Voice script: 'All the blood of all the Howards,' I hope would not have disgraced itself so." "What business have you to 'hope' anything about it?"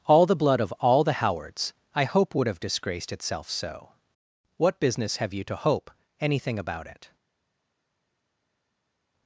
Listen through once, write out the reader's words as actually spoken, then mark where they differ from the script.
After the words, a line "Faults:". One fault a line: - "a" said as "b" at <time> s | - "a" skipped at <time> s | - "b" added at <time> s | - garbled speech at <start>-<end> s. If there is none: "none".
'All the blood of all the Howards,' I hope would have disgraced itself so." "What business have you to 'hope' anything about it?"
Faults:
- "not" skipped at 2.5 s